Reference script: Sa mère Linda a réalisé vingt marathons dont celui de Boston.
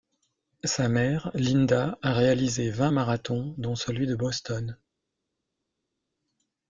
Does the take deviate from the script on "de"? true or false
false